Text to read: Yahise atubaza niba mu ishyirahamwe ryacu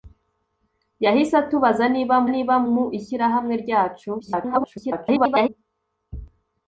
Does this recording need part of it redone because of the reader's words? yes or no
yes